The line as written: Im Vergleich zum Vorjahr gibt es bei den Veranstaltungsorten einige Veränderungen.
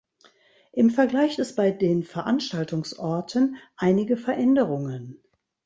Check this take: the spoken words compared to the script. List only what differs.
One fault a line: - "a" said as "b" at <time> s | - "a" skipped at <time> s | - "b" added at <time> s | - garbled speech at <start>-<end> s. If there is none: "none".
- "zum Vorjahr gibt" skipped at 1.4 s